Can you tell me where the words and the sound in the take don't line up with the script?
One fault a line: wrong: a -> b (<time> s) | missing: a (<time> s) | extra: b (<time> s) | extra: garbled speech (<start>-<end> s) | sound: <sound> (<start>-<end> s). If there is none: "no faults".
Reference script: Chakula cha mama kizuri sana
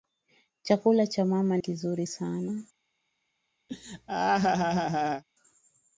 sound: laugh (3.7-5.2 s)